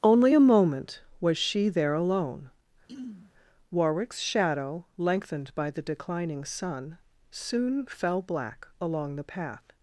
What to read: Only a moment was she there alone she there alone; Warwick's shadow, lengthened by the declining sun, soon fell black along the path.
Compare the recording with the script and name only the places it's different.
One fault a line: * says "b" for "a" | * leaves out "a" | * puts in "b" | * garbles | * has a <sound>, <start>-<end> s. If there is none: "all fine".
* leaves out "she there alone"
* has a throat clearing, 2.9-3.3 s